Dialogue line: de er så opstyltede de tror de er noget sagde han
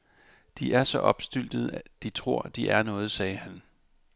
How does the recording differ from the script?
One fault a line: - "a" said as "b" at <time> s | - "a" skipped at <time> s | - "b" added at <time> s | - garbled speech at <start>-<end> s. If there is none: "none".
none